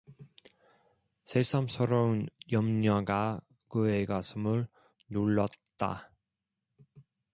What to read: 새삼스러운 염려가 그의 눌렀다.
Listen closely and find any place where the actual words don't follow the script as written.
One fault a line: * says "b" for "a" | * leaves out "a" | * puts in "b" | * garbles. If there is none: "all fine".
* puts in "가슴을"